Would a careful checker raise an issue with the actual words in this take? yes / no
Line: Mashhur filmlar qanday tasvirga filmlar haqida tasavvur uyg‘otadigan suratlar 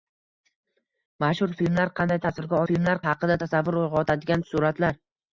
no